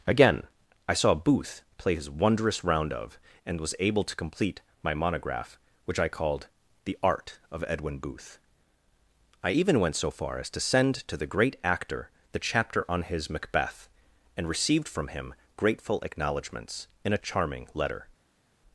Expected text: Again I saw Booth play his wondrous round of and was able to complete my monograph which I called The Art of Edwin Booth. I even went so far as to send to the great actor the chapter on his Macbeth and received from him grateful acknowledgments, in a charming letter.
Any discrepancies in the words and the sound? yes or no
no